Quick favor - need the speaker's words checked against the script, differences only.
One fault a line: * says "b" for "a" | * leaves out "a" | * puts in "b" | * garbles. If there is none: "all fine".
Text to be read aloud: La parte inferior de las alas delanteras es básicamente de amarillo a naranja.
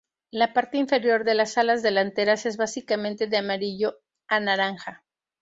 all fine